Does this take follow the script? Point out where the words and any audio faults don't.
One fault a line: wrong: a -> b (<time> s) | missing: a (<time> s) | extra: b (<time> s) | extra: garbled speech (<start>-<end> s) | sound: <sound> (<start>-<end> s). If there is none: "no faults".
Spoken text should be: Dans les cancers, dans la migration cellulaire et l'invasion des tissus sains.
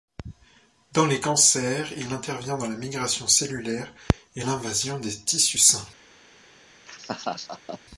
extra: il intervient (2.0 s)
sound: laugh (6.9-7.8 s)